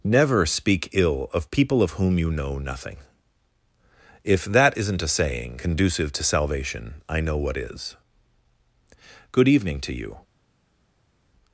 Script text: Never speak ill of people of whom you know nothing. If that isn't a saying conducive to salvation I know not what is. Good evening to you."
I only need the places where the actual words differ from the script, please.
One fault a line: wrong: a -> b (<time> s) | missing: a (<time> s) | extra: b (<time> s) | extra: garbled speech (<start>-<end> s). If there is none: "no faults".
missing: not (7.4 s)